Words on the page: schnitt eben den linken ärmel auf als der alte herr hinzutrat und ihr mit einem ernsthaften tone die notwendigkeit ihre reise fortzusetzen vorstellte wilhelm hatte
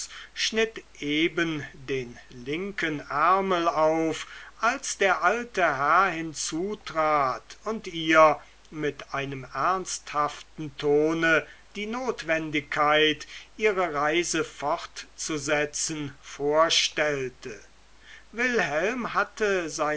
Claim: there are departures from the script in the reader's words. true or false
false